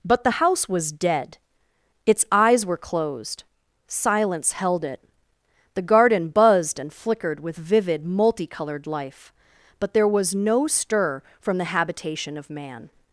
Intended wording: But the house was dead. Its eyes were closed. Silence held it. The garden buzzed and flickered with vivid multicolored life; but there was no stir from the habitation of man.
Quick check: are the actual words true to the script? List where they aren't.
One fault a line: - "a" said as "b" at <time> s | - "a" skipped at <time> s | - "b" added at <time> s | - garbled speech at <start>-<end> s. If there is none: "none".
none